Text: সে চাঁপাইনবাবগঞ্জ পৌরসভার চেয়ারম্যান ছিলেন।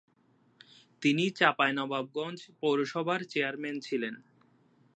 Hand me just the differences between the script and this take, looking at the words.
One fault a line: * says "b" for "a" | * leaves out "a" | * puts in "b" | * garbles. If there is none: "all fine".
* says "তিনি" for "সে"